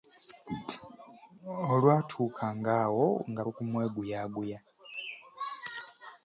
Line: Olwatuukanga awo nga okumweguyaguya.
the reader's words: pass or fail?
pass